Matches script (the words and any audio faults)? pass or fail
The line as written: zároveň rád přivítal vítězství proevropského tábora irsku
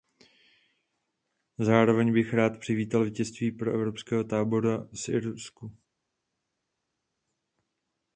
fail